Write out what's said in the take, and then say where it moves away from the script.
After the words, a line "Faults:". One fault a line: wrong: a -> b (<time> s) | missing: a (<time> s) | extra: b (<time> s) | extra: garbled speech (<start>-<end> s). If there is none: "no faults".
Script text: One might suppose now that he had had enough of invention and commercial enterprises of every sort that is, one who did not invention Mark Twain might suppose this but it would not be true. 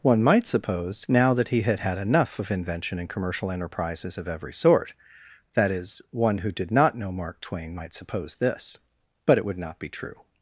One might suppose now that he had had enough of invention and commercial enterprises of every sort that is, one who did not know Mark Twain might suppose this but it would not be true.
Faults:
wrong: invention -> know (7.0 s)